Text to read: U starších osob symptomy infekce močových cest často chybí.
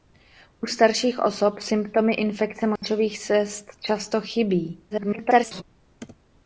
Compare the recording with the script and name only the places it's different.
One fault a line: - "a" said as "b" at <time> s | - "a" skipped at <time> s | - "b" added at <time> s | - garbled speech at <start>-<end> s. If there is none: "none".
- garbled speech at 4.9-5.6 s